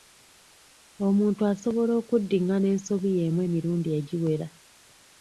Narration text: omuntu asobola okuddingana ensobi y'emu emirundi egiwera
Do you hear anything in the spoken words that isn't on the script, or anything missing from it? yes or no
no